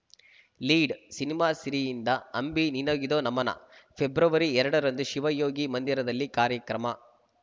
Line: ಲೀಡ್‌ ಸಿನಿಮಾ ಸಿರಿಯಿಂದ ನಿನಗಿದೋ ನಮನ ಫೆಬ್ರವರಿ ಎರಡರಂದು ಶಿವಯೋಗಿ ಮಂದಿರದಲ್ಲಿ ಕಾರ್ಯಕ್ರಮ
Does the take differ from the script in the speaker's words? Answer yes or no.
yes